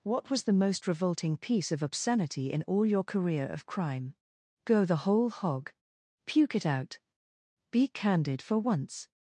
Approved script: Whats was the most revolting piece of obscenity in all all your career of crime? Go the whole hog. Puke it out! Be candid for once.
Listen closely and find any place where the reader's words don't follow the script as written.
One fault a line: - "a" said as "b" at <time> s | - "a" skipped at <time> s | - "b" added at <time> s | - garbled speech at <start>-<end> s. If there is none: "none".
- "Whats" said as "What" at 0.0 s
- "all" skipped at 2.9 s